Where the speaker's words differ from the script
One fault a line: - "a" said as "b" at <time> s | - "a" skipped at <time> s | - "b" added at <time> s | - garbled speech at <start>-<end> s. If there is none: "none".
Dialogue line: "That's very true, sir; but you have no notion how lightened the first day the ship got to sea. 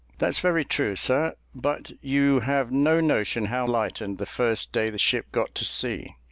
none